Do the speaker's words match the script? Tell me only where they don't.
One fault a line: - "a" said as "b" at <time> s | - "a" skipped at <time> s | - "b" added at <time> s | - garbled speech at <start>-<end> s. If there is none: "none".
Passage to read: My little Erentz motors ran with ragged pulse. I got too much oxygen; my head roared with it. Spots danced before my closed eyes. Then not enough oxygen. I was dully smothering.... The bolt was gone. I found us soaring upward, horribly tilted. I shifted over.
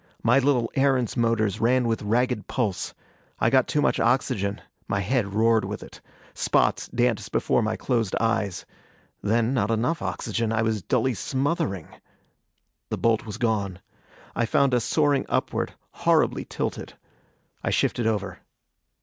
none